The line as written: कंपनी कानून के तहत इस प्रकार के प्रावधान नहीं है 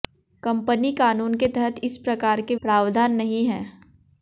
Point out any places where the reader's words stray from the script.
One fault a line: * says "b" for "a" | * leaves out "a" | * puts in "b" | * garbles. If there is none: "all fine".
all fine